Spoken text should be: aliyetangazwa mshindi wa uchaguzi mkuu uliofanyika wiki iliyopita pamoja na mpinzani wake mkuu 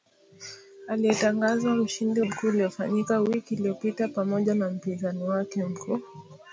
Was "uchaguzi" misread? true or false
true